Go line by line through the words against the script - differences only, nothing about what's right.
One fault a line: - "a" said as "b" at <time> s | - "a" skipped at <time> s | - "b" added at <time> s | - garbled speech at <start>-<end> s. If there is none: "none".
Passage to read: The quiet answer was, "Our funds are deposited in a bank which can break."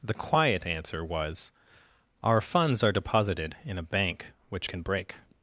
none